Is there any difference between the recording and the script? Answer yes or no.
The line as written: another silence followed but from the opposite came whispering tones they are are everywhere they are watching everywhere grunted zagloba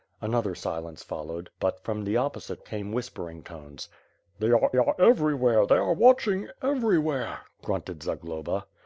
no